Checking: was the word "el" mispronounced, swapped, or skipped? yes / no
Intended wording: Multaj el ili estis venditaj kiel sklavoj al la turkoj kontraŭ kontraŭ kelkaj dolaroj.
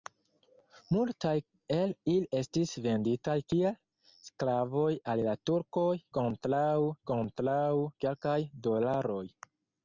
no